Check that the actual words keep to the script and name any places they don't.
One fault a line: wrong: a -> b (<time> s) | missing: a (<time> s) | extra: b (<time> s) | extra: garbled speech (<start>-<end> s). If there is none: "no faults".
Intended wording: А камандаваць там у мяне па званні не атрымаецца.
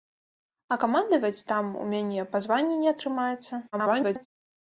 extra: garbled speech (3.7-4.3 s)